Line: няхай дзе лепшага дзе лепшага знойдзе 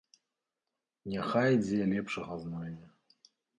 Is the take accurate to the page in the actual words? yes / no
no